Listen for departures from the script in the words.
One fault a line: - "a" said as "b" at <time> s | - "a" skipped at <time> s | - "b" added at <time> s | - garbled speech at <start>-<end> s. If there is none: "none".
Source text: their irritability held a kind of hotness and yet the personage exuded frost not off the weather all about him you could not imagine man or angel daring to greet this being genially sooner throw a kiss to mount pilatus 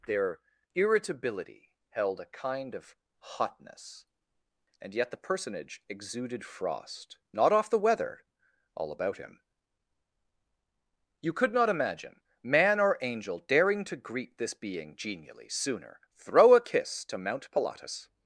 none